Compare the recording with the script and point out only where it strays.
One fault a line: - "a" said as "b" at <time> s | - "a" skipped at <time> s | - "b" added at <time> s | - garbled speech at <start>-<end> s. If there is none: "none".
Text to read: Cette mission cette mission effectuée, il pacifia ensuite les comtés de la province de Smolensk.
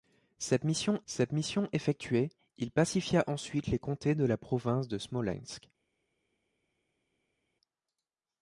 none